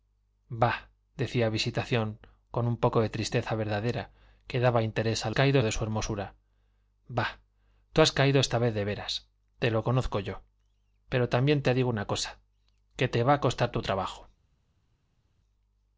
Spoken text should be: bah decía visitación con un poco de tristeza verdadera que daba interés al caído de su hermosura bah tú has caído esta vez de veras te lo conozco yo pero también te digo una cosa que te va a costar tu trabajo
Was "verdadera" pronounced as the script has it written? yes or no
yes